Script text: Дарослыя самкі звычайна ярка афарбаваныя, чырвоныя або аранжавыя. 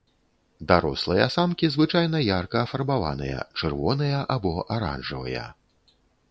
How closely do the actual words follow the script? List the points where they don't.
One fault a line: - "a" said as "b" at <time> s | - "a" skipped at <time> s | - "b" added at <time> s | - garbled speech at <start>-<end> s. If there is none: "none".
none